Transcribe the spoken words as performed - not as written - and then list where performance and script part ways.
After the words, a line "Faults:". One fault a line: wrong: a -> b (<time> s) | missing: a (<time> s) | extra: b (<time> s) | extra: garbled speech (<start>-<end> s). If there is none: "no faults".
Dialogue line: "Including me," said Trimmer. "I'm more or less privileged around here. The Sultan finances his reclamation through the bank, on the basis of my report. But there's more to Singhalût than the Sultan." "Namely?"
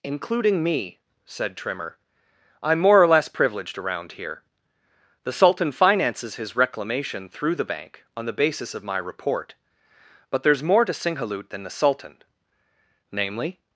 "Including me," said Trimmer. "I'm more or less privileged around here. The Sultan finances his reclamation through the bank, on the basis of my report. But there's more to Singhalût than the Sultan." "Namely?"
Faults:
no faults